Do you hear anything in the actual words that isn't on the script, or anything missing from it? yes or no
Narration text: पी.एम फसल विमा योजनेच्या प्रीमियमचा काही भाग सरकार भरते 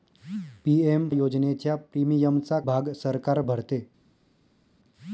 yes